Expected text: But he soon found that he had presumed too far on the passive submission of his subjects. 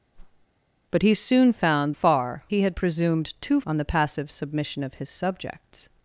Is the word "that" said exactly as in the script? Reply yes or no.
no